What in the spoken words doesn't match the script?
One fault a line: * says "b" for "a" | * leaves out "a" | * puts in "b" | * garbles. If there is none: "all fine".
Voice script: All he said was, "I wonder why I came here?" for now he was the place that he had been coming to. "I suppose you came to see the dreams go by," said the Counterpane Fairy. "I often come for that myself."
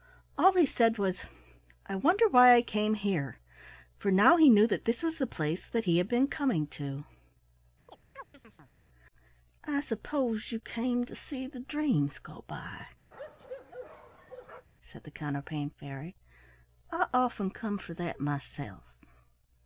* puts in "knew that this"